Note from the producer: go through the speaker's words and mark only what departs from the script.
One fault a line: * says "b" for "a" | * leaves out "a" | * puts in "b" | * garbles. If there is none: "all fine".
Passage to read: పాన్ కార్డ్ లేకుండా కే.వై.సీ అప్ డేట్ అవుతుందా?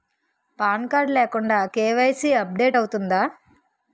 all fine